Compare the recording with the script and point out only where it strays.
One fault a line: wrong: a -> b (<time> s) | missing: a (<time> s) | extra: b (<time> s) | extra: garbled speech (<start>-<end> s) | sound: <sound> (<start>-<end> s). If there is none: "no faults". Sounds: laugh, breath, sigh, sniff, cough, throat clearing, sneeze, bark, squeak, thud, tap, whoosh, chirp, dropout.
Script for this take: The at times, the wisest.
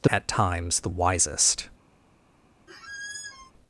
sound: squeak (2.7-3.5 s)